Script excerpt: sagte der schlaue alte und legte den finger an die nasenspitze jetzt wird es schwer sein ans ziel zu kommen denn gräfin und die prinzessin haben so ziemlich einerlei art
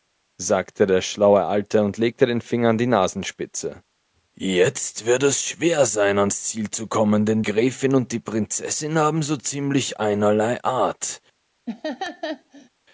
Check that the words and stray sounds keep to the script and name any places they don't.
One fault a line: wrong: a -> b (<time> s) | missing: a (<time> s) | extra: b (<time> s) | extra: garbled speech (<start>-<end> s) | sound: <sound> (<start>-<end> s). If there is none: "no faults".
sound: laugh (11.7-12.7 s)